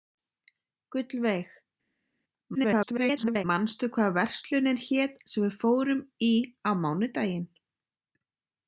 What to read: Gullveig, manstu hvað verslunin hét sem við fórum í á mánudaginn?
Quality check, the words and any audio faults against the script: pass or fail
fail